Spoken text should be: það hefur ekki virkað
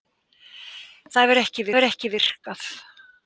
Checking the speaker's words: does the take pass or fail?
fail